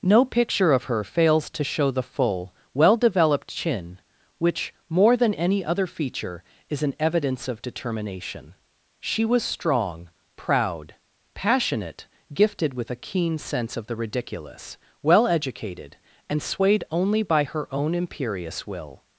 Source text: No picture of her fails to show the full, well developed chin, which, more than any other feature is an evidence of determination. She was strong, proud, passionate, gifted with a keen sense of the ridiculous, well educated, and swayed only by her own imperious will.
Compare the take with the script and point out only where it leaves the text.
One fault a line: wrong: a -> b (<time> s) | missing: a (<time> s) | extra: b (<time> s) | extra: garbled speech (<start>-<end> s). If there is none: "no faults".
no faults